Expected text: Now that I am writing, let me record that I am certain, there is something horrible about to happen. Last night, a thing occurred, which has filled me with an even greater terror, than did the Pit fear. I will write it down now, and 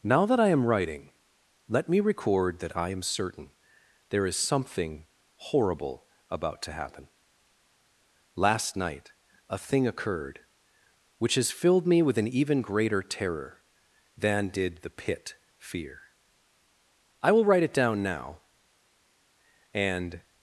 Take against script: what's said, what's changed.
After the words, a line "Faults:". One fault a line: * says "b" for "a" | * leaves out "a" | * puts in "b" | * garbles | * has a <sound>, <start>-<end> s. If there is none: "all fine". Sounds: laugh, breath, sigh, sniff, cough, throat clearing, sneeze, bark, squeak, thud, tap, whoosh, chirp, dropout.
Now that I am writing, let me record that I am certain, there is something horrible about to happen. Last night, a thing occurred, which has filled me with an even greater terror, than did the Pit fear. I will write it down now, and
Faults:
all fine